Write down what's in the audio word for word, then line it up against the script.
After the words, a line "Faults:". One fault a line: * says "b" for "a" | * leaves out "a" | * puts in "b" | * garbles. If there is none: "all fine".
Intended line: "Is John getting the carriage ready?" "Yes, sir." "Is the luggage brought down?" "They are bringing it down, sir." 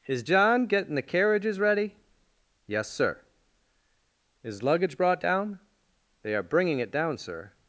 "Is John getting the carriages ready?" "Yes, sir." "Is luggage brought down?" "They are bringing it down, sir."
Faults:
* says "carriages" for "carriage"
* leaves out "the"